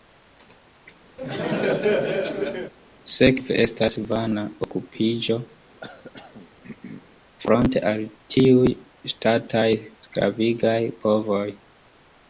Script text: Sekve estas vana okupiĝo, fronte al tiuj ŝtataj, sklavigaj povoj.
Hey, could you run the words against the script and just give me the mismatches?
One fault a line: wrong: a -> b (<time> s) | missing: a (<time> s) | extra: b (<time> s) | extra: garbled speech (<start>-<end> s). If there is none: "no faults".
no faults